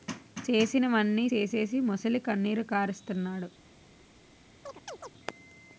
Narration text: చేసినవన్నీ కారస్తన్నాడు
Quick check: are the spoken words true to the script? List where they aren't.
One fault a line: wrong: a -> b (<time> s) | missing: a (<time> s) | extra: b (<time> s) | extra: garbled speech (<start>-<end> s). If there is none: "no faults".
extra: సేసీసి మొసలికన్నీరు (1.2 s)